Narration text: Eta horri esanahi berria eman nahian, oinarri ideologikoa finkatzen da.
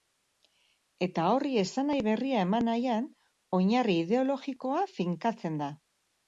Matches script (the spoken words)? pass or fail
pass